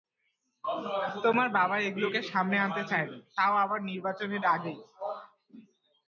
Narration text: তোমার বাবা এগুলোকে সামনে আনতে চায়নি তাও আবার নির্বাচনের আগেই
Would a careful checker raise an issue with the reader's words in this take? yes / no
no